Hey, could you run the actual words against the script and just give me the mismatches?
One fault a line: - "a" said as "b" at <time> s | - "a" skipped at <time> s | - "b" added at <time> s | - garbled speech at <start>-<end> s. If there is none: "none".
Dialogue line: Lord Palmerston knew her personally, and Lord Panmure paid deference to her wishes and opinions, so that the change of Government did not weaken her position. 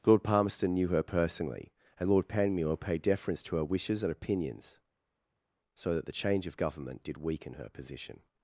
- "not" skipped at 7.2 s